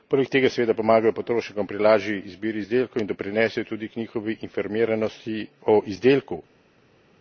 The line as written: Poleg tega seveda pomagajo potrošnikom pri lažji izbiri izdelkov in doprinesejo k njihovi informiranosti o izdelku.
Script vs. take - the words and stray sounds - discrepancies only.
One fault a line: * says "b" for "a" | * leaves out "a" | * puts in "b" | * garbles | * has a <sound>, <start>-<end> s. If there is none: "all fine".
* puts in "tudi"